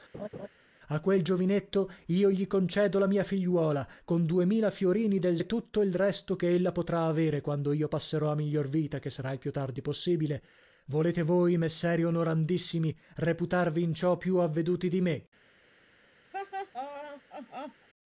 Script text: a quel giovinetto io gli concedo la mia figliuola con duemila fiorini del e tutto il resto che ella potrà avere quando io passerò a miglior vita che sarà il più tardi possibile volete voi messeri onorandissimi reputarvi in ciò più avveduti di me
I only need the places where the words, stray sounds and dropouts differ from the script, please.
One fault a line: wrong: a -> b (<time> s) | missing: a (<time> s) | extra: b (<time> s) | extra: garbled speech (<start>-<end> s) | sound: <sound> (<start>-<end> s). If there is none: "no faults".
sound: laugh (0.1-0.5 s)
sound: laugh (16.3-17.9 s)